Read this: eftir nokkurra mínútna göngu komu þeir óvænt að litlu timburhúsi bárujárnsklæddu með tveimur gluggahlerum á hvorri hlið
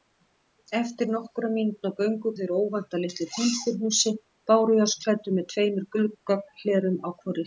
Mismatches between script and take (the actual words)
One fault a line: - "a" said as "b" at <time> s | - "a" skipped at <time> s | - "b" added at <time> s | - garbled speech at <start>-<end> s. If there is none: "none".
- "komu" skipped at 2.3 s